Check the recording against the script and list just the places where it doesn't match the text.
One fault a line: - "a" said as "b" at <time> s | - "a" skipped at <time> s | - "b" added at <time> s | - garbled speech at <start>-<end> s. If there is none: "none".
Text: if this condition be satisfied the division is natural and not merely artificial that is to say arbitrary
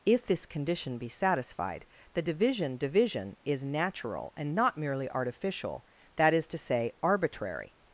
- "division" added at 2.8 s